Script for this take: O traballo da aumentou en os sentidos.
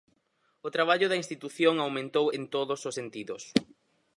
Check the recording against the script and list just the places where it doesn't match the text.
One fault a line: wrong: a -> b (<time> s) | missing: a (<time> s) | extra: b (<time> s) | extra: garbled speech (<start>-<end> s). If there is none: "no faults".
extra: institución (1.2 s)
extra: todos (2.5 s)